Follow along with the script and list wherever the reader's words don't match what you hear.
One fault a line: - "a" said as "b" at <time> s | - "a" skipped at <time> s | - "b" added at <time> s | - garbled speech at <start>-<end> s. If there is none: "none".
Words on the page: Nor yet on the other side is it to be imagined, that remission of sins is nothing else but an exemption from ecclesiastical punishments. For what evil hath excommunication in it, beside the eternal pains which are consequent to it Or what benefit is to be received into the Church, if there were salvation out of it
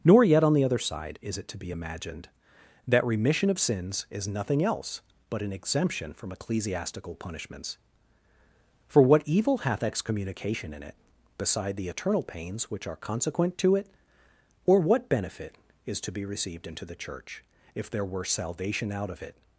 none